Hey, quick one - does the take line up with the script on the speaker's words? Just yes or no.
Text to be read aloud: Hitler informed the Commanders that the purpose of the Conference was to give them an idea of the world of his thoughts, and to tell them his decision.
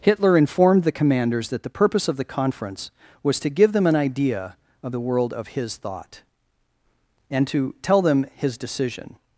no